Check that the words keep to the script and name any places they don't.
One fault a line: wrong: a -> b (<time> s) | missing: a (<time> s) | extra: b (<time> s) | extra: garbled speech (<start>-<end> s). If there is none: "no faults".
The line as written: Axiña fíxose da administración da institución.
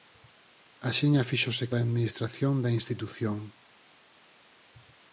no faults